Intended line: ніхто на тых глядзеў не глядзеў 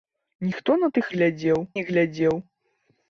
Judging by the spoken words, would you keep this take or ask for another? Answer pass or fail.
pass